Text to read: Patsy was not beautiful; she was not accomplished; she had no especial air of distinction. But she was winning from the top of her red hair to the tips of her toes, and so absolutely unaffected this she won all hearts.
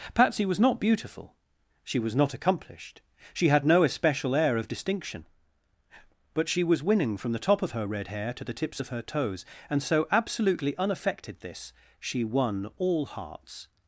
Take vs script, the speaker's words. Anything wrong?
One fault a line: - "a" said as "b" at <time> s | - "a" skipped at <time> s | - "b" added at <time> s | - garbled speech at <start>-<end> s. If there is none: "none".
none